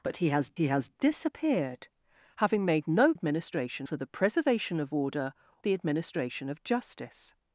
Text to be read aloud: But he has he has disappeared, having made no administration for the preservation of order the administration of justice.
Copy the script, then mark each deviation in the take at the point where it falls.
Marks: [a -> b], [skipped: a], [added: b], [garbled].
But he has he has disappeared, having made no administration for the preservation of order the administration of justice.